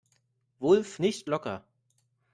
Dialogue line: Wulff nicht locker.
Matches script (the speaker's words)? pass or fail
pass